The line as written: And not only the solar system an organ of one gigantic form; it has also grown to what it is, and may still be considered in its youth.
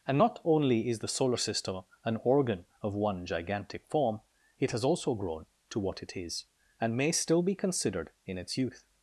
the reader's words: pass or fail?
fail